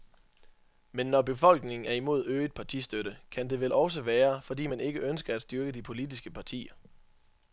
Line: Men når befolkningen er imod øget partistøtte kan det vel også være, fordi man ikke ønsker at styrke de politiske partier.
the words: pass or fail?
pass